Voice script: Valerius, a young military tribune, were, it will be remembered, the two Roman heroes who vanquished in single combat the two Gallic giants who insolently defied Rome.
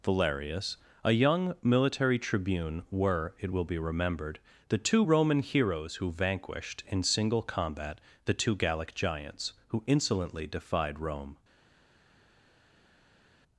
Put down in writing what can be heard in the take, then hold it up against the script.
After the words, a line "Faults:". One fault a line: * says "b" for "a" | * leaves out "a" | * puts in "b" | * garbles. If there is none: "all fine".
Valerius, a young military tribune, were, it will be remembered, the two Roman heroes who vanquished in single combat the two Gallic giants who insolently defied Rome.
Faults:
all fine